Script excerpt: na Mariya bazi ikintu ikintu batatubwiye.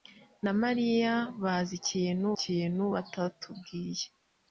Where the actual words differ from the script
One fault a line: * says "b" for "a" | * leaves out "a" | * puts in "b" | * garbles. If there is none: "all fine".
all fine